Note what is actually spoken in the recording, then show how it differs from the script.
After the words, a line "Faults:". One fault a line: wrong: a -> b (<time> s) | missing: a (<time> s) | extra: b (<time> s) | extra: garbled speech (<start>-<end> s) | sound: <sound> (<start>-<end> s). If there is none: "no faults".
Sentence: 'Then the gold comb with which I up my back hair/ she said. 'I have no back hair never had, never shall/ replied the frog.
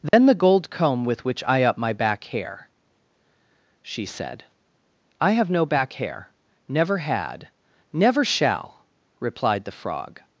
'Then the gold comb with which I up my back hair/ she said. 'I have no back hair never had, never shall/ replied the frog.
Faults:
sound: dropout (0.1-0.1 s)